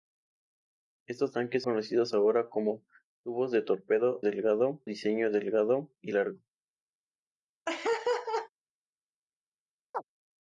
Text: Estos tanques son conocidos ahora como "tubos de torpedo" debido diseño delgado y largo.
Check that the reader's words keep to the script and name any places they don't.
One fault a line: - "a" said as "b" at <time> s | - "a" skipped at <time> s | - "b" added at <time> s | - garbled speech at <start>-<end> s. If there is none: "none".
- "son" skipped at 1.6 s
- "debido" said as "delgado" at 4.2 s